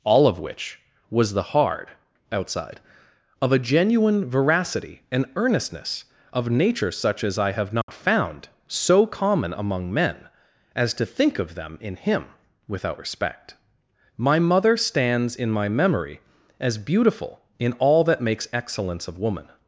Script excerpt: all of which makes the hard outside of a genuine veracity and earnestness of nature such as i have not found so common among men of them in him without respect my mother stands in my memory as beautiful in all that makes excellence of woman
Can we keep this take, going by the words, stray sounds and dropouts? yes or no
no